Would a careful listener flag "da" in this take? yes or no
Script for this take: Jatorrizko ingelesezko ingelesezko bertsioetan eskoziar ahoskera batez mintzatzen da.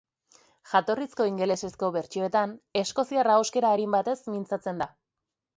no